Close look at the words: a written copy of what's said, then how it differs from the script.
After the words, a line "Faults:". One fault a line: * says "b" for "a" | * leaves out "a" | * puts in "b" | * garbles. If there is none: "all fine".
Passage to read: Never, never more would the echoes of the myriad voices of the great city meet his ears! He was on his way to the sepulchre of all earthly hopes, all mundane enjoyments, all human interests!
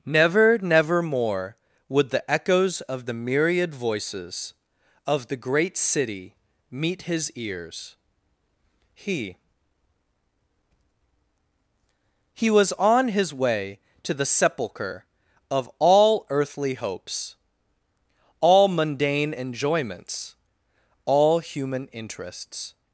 Never, never more would the echoes of the myriad voices of the great city meet his ears! He He was on his way to the sepulchre of all earthly hopes, all mundane enjoyments, all human interests!
Faults:
* puts in "He"